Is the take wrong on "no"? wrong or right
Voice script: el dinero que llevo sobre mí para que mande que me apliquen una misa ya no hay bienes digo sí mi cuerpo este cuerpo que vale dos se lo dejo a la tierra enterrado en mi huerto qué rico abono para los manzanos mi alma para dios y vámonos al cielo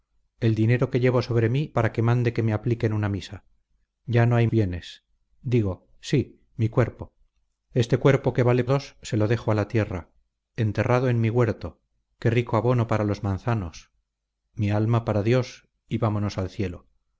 right